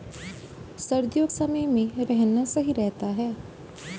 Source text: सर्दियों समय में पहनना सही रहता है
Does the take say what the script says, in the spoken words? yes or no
yes